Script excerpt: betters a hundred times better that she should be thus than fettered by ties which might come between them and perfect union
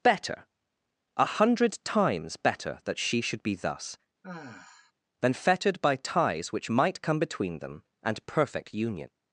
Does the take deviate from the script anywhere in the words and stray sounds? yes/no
yes